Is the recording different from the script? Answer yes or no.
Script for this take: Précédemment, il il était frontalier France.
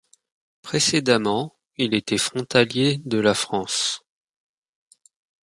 yes